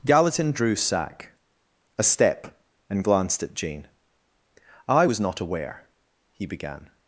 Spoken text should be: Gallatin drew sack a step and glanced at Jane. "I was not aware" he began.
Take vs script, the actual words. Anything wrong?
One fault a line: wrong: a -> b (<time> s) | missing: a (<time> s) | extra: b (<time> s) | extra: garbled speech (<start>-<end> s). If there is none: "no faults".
no faults